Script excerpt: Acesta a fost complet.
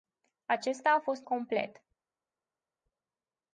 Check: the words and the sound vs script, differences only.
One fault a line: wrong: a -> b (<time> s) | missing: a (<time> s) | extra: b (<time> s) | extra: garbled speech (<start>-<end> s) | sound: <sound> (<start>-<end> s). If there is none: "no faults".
no faults